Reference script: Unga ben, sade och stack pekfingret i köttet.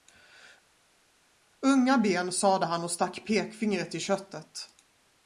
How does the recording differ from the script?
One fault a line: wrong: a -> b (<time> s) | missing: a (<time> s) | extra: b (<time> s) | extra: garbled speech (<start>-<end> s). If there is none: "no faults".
extra: han (2.7 s)